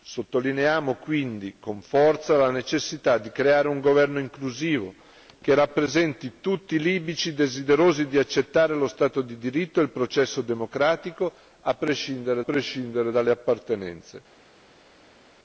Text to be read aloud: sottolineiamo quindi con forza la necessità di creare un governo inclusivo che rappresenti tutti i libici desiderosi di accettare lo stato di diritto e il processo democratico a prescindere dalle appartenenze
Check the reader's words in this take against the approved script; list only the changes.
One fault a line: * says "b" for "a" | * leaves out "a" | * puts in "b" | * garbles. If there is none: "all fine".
* puts in "prescindere"